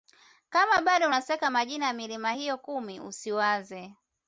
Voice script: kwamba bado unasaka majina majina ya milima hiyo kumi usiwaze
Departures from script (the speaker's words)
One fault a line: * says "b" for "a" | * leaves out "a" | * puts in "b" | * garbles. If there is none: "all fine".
* says "kama" for "kwamba"
* leaves out "majina"